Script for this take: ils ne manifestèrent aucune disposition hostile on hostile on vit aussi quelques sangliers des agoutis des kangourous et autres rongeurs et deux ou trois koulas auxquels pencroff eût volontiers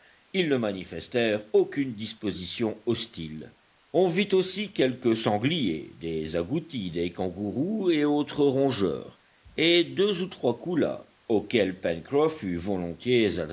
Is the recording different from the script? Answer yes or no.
yes